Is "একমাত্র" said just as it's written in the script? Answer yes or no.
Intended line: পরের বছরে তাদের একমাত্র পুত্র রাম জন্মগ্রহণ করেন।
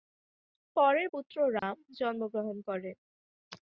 no